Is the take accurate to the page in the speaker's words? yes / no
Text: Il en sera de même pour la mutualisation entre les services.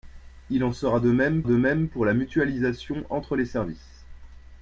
no